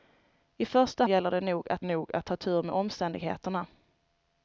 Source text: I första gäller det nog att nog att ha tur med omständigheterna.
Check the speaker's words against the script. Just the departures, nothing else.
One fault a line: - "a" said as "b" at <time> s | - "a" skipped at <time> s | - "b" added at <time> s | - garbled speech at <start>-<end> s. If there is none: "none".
none